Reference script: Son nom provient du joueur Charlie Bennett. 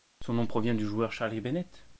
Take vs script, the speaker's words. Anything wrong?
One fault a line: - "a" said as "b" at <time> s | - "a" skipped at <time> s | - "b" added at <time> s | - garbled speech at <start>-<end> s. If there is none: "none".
none